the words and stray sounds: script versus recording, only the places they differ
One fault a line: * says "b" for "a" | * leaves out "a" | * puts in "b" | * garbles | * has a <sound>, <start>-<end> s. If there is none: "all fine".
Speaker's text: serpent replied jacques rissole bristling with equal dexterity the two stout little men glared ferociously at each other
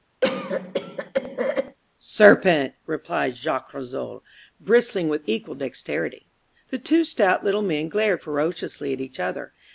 * has a cough, 0.2-1.8 s